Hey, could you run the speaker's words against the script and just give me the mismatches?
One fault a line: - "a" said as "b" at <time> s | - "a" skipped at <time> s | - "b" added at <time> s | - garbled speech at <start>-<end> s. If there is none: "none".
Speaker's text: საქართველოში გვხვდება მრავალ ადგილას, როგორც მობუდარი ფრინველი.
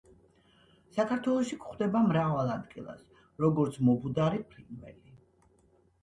none